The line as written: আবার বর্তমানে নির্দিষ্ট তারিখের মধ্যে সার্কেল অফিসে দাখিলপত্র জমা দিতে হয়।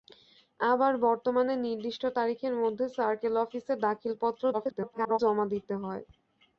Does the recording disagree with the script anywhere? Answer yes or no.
yes